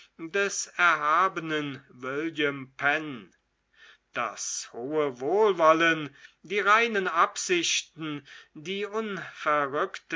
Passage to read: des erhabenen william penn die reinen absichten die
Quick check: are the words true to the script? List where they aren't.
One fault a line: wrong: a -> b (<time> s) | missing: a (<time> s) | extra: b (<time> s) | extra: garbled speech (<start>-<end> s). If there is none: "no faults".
extra: das hohe wohlwollen (4.1 s)